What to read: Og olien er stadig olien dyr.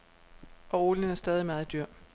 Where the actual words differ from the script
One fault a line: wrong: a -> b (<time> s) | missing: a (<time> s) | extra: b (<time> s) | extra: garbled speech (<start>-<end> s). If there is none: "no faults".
wrong: olien -> meget (1.5 s)